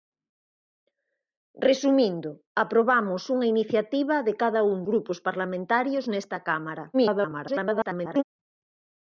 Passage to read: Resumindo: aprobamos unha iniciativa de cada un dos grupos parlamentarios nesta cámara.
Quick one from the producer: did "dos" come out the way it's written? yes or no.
no